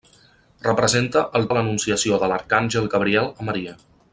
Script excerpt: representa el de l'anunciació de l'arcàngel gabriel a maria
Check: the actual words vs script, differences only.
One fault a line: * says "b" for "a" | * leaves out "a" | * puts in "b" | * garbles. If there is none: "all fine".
all fine